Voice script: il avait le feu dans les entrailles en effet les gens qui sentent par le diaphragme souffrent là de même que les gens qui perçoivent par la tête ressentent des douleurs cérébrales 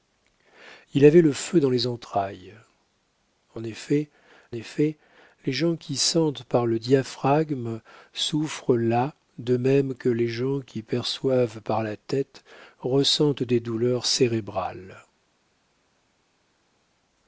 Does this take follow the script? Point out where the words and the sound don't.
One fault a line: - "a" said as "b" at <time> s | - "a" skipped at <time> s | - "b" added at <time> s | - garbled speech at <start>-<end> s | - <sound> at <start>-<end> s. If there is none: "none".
- "effet" added at 4.5 s